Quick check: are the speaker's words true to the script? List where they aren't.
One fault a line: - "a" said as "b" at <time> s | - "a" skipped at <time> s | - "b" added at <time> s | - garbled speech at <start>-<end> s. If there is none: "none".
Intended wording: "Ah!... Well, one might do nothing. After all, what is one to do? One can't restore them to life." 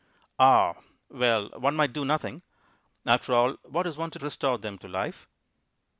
- "do One can't" skipped at 4.2 s